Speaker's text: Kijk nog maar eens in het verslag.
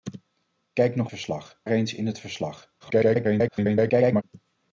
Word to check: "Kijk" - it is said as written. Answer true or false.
true